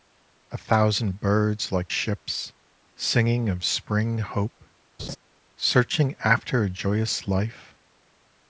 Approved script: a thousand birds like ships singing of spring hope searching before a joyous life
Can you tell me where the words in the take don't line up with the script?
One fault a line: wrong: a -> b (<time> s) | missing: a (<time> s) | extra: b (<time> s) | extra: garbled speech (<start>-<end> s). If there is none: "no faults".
wrong: before -> after (6.2 s)